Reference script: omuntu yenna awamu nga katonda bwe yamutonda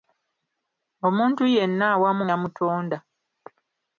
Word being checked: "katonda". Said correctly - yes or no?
no